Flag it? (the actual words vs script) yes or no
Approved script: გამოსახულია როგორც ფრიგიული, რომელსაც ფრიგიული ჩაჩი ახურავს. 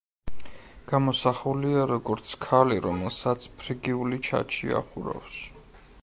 yes